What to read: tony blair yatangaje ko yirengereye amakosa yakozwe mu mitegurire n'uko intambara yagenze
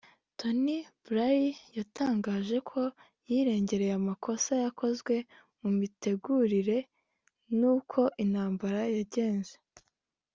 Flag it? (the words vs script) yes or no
no